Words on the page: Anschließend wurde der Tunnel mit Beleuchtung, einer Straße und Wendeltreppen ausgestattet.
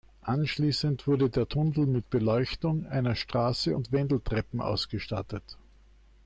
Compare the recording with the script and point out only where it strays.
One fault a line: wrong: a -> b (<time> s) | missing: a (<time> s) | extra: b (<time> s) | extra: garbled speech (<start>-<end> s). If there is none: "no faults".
no faults